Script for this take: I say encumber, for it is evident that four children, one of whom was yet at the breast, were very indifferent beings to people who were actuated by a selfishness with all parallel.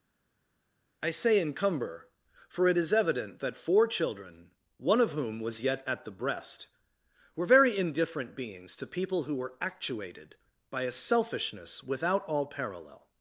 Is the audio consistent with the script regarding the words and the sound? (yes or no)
no